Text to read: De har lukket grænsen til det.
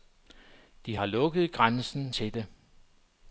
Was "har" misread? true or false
false